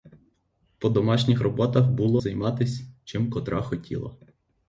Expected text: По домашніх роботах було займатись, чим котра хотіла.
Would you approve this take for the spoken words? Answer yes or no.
yes